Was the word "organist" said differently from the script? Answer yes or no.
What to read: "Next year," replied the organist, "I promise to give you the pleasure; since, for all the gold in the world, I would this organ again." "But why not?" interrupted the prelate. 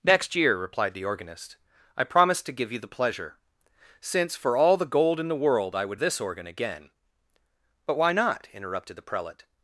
no